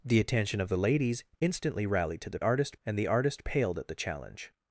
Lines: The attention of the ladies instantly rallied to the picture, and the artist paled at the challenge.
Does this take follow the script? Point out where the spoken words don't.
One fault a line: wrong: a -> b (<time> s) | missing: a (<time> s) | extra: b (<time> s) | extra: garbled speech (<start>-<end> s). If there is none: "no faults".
wrong: picture -> artist (2.4 s)